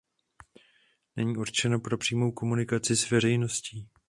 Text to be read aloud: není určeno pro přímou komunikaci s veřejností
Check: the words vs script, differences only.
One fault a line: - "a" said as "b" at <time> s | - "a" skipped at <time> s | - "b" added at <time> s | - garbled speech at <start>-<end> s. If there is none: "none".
none